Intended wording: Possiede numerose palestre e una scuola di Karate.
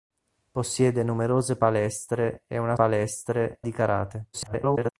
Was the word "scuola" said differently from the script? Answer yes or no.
yes